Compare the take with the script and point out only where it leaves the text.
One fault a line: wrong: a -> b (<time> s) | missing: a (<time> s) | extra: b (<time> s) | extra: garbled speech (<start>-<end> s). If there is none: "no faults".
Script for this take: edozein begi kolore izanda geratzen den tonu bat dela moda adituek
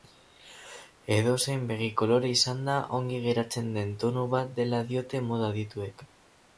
extra: ongi (3.0 s)
extra: diote (4.9 s)